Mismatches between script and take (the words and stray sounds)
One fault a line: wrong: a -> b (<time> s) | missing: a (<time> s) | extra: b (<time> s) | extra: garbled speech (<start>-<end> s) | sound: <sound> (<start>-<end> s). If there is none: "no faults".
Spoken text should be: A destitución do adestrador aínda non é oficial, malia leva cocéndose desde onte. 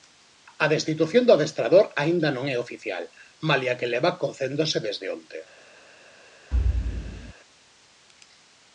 extra: que (3.8 s)
sound: thud (6.5-7.3 s)